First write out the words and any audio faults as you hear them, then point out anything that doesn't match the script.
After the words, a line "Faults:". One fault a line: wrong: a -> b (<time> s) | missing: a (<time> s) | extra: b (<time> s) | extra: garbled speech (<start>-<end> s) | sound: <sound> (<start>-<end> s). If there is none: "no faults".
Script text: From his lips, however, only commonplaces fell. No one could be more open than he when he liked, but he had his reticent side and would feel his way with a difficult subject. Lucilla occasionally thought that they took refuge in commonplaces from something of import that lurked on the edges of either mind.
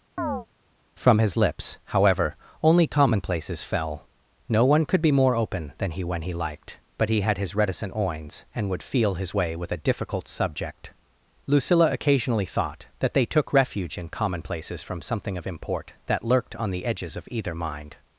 From his lips, however, only commonplaces fell. No one could be more open than he when he liked, but he had his reticent oins and would feel his way with a difficult subject. Lucilla occasionally thought that they took refuge in commonplaces from something of import that lurked on the edges of either mind.
Faults:
sound: chirp (0.2-0.5 s)
wrong: side -> oins (8.0 s)